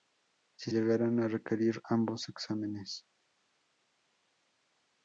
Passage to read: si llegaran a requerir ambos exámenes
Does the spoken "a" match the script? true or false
true